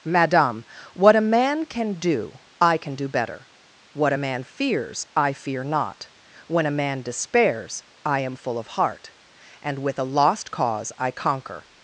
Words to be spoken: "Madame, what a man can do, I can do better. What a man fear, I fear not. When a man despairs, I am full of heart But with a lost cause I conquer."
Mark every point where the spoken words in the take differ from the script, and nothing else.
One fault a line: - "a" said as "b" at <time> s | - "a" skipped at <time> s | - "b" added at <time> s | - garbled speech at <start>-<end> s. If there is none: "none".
- "fear" said as "fears" at 4.4 s
- "But" said as "And" at 9.6 s